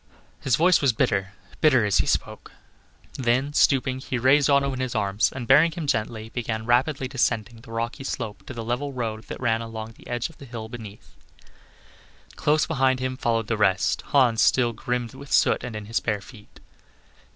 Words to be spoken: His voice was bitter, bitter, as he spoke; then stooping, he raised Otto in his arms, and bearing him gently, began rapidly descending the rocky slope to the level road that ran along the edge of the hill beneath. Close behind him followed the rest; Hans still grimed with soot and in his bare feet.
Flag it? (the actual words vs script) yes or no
no